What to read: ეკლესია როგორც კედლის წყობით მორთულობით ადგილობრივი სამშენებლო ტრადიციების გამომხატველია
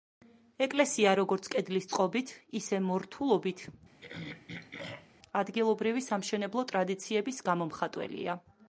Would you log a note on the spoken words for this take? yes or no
yes